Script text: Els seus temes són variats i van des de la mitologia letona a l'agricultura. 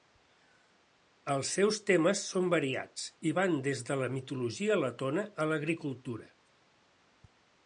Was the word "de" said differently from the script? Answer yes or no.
no